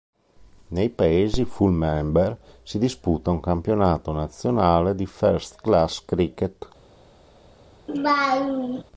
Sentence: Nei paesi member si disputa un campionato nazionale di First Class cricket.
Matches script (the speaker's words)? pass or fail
fail